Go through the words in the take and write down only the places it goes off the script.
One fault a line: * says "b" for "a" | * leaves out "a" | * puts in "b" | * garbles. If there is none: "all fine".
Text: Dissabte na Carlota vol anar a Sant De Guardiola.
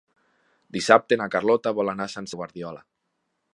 all fine